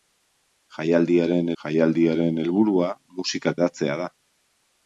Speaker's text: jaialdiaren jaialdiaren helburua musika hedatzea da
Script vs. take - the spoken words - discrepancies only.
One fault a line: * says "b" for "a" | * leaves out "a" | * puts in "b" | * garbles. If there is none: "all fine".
all fine